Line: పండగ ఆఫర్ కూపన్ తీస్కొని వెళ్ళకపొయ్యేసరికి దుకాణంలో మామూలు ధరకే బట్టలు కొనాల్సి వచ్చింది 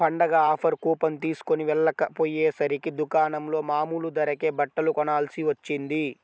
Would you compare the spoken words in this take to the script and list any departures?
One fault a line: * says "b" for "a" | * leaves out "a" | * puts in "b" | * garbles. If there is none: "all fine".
all fine